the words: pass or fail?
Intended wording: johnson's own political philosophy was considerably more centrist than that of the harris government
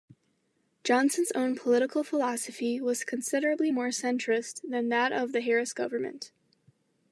pass